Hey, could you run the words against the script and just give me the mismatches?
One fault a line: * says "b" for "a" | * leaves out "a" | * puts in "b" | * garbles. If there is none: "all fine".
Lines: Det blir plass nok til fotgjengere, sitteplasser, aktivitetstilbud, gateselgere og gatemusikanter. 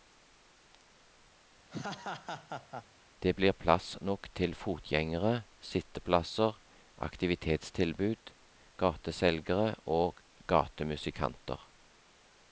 all fine